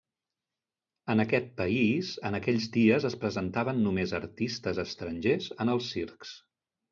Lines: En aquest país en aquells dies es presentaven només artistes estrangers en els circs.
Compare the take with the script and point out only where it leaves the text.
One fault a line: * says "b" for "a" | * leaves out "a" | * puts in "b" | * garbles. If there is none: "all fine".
all fine